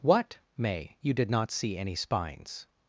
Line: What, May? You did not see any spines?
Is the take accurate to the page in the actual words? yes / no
yes